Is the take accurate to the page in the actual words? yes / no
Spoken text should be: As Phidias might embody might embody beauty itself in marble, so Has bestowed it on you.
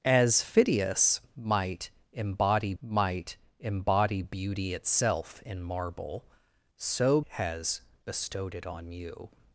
yes